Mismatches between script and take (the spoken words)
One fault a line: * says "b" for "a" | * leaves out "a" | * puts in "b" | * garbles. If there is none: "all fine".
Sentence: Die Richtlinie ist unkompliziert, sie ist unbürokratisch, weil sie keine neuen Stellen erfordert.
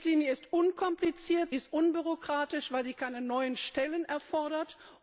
* leaves out "sie"